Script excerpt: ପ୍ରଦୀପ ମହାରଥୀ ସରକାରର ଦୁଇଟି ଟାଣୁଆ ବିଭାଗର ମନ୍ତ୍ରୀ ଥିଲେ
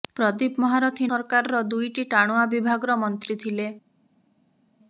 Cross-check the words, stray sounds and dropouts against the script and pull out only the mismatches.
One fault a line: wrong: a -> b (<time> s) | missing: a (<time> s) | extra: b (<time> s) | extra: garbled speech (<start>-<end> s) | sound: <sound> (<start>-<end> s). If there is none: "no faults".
no faults